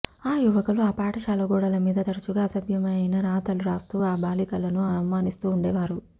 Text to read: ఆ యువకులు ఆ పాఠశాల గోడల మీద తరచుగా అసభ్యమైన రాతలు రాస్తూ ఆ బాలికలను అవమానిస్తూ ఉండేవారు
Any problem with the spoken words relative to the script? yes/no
no